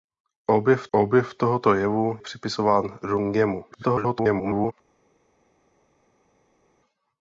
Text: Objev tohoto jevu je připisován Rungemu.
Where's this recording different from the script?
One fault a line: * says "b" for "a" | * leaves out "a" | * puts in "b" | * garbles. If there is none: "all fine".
* puts in "objev"
* leaves out "je"
* garbles